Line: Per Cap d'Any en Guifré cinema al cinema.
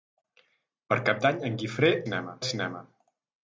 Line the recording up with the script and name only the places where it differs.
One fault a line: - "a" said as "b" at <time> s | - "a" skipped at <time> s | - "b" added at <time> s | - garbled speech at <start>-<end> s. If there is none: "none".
none